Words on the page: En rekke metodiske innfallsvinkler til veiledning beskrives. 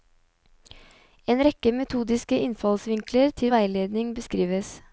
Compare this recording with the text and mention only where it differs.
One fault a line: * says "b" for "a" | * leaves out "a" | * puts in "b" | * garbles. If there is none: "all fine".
all fine